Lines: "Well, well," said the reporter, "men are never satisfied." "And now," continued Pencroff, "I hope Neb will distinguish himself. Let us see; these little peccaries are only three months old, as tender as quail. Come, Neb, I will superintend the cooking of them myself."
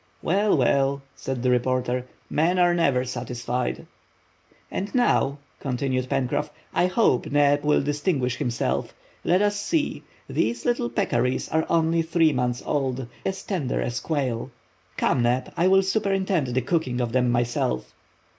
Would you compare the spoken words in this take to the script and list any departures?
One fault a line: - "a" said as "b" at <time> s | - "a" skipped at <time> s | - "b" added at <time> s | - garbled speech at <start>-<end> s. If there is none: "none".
none